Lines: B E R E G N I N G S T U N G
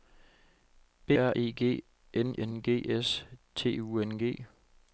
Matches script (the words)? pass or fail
fail